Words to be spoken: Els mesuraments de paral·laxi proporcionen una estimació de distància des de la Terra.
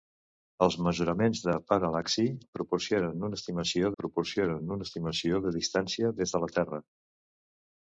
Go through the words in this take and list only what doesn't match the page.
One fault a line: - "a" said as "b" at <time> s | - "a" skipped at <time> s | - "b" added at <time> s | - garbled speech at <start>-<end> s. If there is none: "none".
- "proporcionen una estimació" added at 4.0 s